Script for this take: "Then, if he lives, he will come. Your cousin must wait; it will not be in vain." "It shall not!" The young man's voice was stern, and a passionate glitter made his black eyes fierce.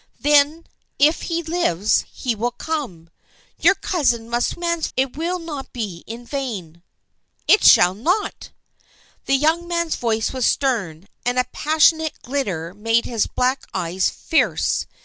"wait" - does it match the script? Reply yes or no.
no